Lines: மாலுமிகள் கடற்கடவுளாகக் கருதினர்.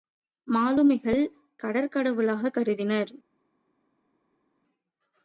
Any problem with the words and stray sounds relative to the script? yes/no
no